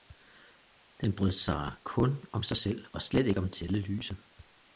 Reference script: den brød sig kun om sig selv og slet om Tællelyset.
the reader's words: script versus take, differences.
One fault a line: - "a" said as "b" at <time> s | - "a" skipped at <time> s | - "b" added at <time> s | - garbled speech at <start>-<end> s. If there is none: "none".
- "ikke" added at 3.3 s